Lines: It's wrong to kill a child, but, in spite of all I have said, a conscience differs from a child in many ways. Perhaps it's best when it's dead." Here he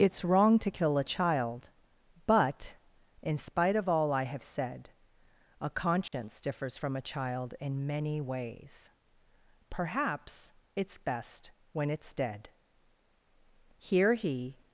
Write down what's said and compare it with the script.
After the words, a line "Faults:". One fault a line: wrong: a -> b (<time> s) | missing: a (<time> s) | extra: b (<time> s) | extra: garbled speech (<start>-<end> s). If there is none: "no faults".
It's wrong to kill a child, but, in spite of all I have said, a conscience differs from a child in many ways. Perhaps it's best when it's dead." Here he
Faults:
no faults